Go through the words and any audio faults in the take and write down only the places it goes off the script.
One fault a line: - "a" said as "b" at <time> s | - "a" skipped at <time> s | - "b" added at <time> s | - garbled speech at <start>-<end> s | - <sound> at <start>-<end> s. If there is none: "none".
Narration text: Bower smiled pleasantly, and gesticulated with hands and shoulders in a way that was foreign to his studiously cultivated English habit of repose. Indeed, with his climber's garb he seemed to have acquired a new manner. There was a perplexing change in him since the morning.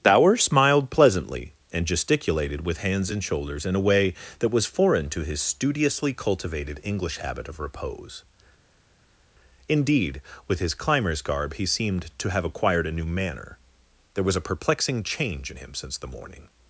none